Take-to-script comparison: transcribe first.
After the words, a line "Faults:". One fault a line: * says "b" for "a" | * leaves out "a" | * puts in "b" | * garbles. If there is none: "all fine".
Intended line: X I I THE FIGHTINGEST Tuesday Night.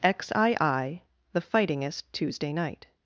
X I I THE FIGHTINGEST Tuesday Night.
Faults:
all fine